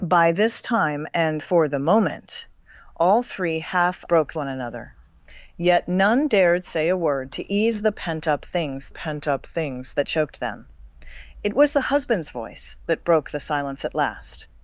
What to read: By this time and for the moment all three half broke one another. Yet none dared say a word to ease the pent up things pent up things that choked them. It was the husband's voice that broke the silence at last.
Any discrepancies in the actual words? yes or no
no